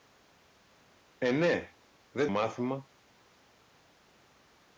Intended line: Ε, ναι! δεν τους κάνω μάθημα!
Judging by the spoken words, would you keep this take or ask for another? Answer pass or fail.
fail